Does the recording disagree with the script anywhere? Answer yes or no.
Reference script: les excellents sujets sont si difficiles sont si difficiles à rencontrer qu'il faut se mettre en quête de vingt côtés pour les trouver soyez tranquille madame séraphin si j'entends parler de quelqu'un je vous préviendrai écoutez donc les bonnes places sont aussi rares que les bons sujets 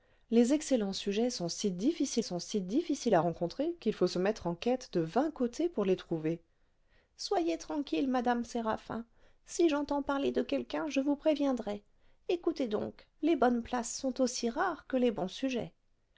no